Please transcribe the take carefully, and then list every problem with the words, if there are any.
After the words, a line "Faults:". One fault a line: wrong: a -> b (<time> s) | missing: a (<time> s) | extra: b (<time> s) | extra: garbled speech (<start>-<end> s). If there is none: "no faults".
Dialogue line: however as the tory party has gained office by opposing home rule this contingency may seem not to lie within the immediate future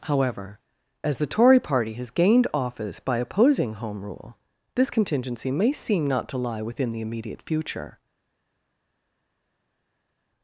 however as the tory party has gained office by opposing home rule this contingency may seem not to lie within the immediate future
Faults:
no faults